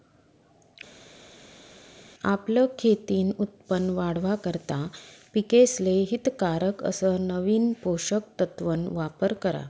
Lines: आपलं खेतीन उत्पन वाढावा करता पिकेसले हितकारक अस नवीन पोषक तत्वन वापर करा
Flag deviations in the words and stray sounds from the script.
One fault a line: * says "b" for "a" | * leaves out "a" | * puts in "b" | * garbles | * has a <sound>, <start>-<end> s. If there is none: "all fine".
all fine